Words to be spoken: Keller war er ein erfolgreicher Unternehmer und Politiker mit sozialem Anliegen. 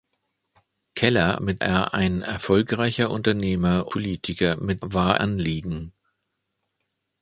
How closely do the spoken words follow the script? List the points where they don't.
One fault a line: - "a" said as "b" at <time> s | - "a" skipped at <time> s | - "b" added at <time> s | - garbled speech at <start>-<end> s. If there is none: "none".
- "war" said as "mit" at 1.4 s
- "und" skipped at 3.9 s
- "sozialem" said as "war" at 4.8 s